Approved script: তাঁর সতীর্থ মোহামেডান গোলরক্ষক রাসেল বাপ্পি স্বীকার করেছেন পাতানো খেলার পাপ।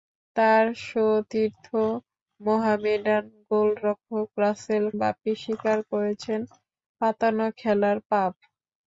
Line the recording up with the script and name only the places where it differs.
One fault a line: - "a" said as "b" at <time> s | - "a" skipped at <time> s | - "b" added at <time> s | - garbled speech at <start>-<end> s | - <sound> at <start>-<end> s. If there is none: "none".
none